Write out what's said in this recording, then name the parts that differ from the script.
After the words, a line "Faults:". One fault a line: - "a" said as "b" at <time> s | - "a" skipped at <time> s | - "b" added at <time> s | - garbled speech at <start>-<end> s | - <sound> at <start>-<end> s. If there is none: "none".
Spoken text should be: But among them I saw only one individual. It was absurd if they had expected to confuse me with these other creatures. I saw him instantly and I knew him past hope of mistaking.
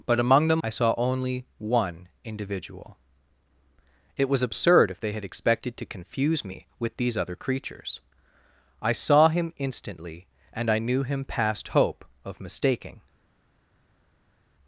But among them I saw only one individual. It was absurd if they had expected to confuse me with these other creatures. I saw him instantly and I knew him past hope of mistaking.
Faults:
none